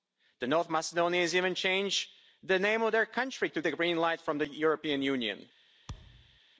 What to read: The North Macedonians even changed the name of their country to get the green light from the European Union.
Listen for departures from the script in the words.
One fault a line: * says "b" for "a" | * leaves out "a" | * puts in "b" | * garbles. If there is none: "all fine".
* leaves out "get"